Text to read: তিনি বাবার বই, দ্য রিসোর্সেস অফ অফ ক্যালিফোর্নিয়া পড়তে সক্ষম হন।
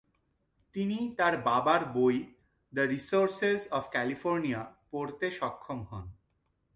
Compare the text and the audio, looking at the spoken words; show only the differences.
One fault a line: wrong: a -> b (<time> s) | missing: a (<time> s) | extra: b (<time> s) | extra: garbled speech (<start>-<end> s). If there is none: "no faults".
extra: তার (1.2 s)
missing: অফ (3.8 s)